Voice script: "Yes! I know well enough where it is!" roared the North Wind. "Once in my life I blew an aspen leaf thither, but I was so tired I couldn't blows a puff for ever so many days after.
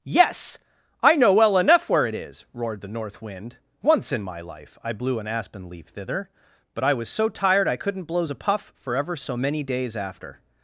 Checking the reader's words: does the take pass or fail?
pass